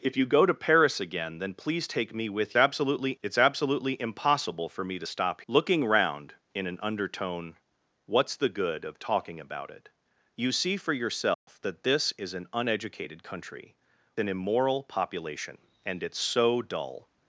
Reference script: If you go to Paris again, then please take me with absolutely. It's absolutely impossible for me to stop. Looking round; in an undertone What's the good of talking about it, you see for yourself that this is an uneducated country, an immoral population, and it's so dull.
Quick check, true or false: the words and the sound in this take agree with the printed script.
false